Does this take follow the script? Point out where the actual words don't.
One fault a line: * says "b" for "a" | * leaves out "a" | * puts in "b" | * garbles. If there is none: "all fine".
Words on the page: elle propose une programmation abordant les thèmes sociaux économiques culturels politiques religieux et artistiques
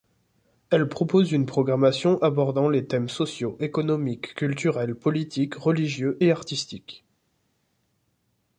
all fine